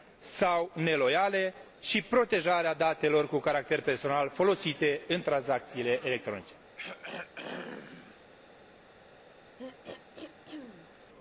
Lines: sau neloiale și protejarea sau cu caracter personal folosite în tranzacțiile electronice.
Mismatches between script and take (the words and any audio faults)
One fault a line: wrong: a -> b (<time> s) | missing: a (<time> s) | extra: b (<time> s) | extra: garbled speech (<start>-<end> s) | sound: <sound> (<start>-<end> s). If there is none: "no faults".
wrong: sau -> datelor (2.7 s)
sound: throat clearing (6.8-8.3 s)
sound: throat clearing (9.6-10.9 s)